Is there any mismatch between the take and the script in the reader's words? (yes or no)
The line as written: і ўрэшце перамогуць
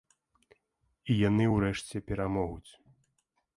yes